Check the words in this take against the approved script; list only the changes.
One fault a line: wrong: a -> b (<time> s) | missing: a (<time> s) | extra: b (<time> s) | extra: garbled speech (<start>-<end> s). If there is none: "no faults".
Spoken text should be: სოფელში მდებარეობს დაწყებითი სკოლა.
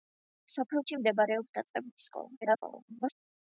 extra: garbled speech (2.4-3.1 s)